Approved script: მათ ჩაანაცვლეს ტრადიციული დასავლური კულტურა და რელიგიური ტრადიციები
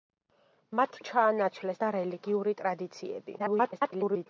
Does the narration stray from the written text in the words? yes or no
yes